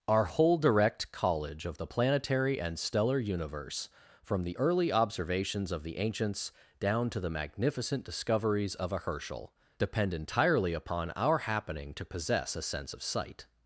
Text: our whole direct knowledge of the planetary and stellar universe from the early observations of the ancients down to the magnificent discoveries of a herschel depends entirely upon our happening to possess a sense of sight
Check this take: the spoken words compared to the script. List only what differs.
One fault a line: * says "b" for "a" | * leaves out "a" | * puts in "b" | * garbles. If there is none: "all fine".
* says "college" for "knowledge"
* says "depend" for "depends"